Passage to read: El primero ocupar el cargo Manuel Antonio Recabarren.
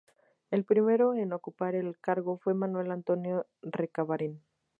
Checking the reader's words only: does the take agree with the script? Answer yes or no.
no